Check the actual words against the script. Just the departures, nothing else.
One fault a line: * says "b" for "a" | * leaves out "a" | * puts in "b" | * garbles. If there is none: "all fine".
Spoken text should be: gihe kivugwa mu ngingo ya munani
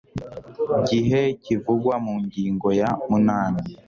all fine